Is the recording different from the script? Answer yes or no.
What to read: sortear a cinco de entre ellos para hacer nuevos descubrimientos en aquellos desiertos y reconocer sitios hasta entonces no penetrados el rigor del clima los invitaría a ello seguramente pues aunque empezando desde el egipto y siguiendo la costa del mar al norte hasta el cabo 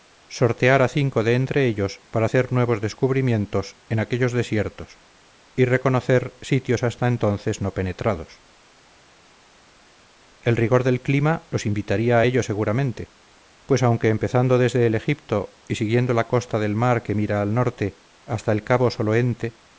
yes